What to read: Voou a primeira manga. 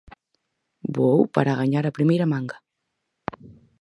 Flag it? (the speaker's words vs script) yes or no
yes